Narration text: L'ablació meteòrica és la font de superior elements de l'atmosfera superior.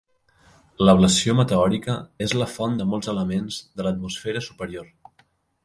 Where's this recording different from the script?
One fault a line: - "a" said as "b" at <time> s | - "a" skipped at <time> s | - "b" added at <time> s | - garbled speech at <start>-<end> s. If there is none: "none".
- "superior" said as "molts" at 2.9 s